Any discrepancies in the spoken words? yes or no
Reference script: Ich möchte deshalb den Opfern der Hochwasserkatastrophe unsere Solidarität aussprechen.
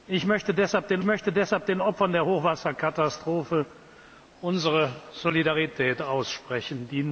yes